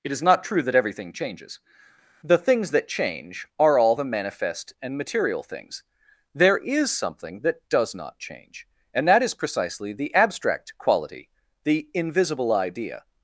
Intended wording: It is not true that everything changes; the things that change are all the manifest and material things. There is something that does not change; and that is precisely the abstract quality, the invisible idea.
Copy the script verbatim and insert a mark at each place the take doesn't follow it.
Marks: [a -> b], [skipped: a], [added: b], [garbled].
It is not true that everything changes; the things that change are all the manifest and material things. There is something that does not change; and that is precisely the abstract quality, the invisible idea.